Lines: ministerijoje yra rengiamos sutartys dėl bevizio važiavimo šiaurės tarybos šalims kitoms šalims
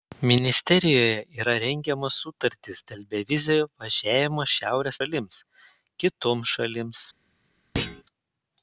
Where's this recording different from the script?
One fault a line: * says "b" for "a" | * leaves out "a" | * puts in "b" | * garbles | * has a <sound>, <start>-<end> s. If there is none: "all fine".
* leaves out "tarybos"
* has a thud, 7.7-8.0 s